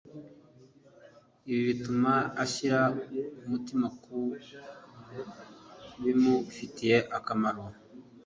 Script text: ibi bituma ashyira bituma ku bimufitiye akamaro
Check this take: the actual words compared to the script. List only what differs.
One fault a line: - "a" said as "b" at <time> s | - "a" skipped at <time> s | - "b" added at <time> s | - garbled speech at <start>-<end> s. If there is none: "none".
- "bituma" said as "umutima" at 3.4 s